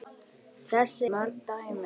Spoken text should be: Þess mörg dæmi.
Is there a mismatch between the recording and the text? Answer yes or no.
no